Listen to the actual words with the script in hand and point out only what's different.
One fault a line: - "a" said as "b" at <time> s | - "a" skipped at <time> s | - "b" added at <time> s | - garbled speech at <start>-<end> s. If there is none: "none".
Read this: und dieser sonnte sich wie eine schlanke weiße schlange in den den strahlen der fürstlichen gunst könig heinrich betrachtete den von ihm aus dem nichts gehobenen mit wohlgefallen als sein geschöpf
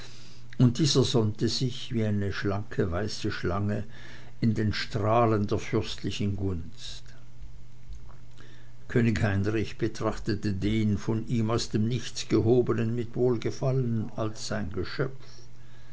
- "den" skipped at 4.7 s